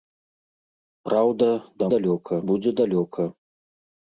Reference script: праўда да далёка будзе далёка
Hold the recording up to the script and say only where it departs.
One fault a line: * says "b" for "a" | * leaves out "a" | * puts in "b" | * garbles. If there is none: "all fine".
all fine